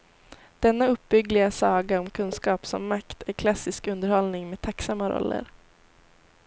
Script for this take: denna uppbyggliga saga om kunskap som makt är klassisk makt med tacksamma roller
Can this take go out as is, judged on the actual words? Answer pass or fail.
fail